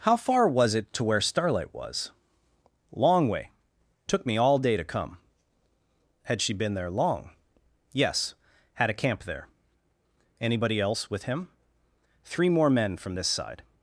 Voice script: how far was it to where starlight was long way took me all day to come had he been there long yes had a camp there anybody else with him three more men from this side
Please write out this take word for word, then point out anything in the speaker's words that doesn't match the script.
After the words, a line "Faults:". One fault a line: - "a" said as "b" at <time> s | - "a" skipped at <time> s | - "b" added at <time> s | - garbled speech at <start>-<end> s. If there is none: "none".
how far was it to where starlight was long way took me all day to come had she been there long yes had a camp there anybody else with him three more men from this side
Faults:
- "he" said as "she" at 6.4 s